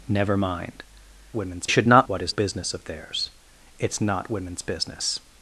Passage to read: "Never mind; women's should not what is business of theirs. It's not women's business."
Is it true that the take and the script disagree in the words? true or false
false